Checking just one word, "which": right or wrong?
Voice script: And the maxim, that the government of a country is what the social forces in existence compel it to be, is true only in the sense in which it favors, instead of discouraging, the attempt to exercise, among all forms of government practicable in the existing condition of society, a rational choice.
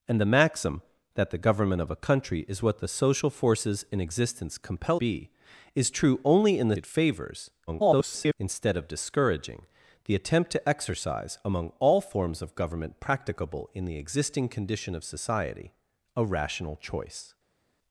wrong